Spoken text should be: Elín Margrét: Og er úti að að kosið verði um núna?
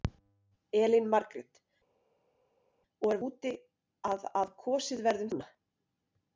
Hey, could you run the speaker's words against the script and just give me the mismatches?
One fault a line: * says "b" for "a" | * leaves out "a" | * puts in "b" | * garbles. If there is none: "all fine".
all fine